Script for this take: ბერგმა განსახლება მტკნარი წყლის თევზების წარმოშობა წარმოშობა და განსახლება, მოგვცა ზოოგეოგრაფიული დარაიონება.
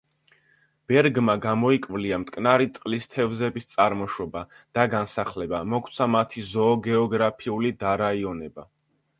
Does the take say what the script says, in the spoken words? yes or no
no